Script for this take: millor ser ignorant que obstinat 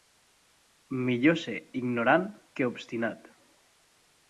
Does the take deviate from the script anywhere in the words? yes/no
no